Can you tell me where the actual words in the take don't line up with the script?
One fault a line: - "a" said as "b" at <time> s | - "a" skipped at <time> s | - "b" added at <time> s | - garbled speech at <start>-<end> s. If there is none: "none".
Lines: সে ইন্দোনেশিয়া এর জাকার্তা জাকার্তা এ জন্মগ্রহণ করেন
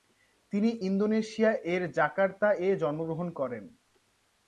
- "সে" said as "তিনি" at 0.5 s
- "জাকার্তা" skipped at 2.5 s